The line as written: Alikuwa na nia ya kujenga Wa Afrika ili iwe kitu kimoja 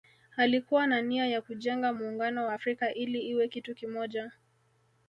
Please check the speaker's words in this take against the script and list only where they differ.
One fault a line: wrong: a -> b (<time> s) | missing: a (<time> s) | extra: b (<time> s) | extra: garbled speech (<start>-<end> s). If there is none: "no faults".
extra: Muungano (1.9 s)